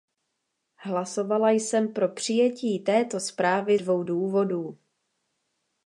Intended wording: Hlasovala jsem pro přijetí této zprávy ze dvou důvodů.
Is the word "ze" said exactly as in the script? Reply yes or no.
no